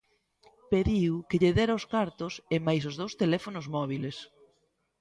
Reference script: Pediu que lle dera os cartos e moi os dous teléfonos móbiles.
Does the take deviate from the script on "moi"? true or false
true